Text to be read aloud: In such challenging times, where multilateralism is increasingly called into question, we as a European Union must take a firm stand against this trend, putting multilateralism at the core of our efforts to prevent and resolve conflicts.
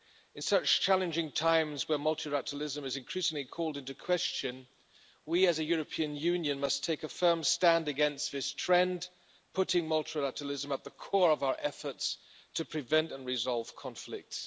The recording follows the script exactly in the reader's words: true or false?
true